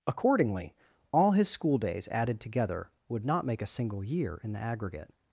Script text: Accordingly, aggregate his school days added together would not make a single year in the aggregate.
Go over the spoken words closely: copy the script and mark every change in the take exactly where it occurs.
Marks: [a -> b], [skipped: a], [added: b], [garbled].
Accordingly, [aggregate -> all] his school days added together would not make a single year in the aggregate.